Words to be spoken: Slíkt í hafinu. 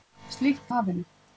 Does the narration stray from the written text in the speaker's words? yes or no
no